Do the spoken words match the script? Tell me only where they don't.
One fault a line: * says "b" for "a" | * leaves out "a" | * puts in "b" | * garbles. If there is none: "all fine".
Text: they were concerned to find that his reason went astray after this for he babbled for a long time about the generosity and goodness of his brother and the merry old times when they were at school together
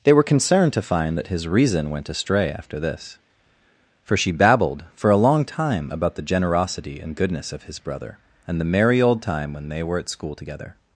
* says "she" for "he"
* says "time" for "times"